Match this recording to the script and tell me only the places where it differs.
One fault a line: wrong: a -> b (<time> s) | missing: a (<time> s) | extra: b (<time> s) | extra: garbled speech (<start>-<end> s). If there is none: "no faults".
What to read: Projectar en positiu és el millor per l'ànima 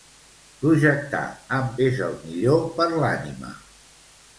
missing: positiu (1.7 s)